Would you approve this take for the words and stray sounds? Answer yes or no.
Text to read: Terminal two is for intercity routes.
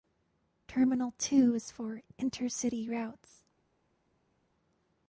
yes